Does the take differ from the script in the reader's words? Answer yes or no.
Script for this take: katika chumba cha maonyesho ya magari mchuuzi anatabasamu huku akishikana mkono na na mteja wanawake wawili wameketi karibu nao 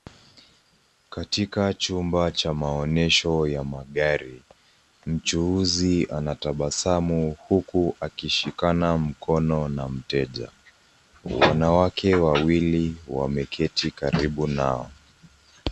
yes